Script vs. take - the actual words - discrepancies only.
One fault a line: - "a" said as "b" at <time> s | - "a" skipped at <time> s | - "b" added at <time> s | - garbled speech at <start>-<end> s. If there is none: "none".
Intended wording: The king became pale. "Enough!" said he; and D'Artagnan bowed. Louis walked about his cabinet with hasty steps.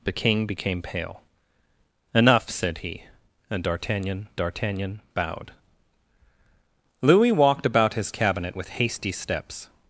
- "D'Artagnan" added at 4.4 s